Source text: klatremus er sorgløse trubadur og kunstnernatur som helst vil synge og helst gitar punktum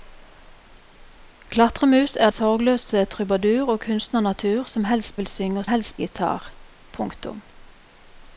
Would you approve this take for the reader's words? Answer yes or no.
yes